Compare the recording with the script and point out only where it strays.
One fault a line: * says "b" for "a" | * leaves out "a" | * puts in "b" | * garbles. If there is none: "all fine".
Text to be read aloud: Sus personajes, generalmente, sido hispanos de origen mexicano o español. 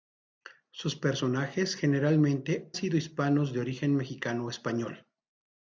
all fine